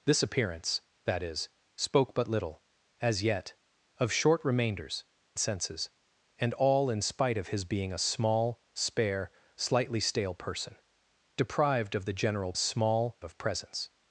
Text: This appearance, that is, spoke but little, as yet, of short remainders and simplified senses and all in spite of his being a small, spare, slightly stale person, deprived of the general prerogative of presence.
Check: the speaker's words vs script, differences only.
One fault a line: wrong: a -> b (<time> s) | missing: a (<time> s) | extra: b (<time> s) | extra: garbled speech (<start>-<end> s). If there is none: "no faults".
missing: and simplified (5.0 s)
wrong: prerogative -> small (12.5 s)